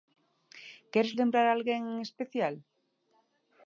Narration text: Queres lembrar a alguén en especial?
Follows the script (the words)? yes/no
yes